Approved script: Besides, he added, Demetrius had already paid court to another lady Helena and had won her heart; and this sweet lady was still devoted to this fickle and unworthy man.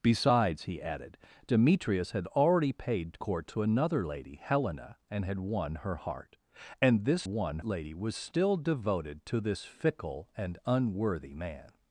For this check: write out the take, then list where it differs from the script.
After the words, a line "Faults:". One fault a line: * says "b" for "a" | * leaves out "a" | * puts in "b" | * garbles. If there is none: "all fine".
Besides, he added, Demetrius had already paid court to another lady Helena and had won her heart; and this won lady was still devoted to this fickle and unworthy man.
Faults:
* says "won" for "sweet"